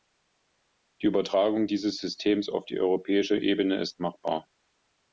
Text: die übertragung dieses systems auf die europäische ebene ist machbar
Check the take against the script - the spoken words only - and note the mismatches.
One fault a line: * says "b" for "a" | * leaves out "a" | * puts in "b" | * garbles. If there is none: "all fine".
all fine